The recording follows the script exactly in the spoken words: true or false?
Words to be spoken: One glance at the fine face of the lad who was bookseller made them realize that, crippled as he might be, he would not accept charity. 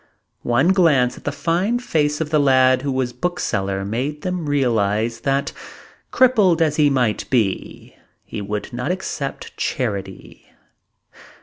true